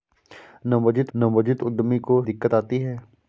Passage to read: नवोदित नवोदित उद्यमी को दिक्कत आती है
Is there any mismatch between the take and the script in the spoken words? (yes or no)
no